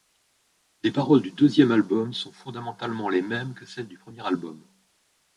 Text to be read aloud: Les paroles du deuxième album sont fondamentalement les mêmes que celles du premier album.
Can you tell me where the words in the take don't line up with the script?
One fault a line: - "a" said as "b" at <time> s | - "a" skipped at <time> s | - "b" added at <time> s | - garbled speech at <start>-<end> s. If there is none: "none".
none